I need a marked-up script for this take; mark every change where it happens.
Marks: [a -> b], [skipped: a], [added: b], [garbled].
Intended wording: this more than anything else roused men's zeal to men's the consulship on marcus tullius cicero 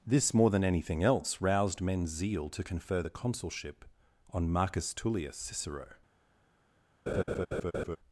this more than anything else roused men's zeal to [men's -> confer] the consulship on marcus tullius cicero